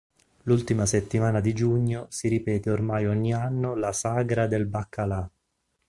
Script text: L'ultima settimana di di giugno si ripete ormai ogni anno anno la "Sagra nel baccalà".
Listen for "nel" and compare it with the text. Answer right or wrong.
wrong